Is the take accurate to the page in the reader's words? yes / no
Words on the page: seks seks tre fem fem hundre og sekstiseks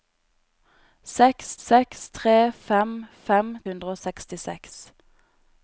yes